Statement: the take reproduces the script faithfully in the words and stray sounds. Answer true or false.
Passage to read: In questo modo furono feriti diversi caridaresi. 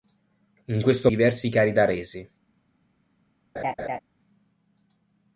false